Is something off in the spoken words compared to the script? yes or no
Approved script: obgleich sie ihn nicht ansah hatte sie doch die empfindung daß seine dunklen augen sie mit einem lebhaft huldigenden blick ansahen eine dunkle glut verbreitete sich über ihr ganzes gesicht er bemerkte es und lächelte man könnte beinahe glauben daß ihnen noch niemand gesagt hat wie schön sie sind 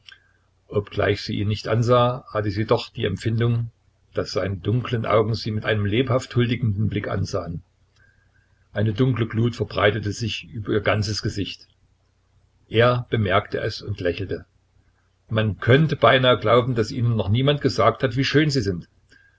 no